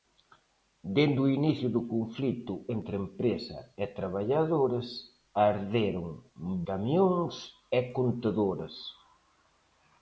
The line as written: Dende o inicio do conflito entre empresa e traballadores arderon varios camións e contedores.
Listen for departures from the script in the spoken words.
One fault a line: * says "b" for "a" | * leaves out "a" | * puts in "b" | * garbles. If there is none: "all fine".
* leaves out "varios"